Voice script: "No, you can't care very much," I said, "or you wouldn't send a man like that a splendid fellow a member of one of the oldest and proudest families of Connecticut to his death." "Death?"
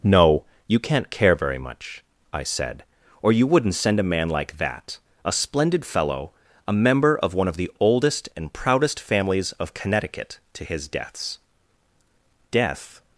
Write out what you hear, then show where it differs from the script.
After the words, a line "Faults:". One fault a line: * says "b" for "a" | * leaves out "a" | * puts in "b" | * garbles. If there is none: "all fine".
"No, you can't care very much," I said, "or you wouldn't send a man like that a splendid fellow a member of one of the oldest and proudest families of Connecticut to his deaths." "Death?"
Faults:
* says "deaths" for "death"